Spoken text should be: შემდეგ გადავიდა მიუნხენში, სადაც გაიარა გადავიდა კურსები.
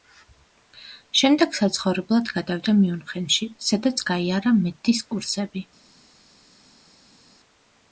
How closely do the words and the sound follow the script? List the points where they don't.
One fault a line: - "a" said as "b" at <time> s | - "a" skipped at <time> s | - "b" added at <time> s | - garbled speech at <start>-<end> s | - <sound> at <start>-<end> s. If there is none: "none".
- "საცხოვრებლად" added at 1.6 s
- "გადავიდა" said as "მედდის" at 4.6 s